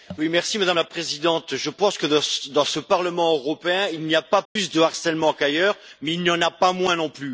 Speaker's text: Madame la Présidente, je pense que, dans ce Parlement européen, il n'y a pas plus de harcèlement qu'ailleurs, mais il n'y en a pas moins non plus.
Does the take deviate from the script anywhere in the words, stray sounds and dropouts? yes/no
yes